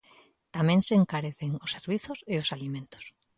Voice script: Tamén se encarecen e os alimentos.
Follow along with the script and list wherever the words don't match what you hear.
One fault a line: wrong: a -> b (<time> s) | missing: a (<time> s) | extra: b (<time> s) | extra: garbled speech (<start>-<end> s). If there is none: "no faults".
extra: os servizos (1.6 s)